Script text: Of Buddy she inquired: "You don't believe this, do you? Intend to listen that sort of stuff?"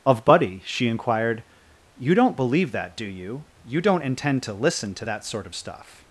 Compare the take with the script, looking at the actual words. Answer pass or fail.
fail